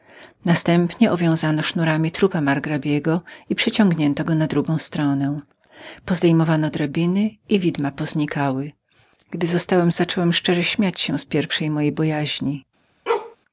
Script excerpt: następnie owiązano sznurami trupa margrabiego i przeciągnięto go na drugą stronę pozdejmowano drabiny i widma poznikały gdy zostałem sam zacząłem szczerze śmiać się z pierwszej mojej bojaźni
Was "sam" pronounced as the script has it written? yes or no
no